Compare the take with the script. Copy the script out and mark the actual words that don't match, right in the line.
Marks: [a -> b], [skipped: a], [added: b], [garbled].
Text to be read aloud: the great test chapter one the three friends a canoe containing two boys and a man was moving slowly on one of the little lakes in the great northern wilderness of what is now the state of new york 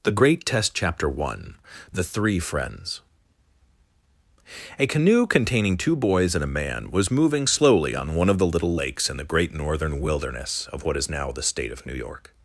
the great test chapter one the three friends a canoe containing two boys and a man was moving slowly on one of the little lakes in the great northern wilderness of what is now the state of new york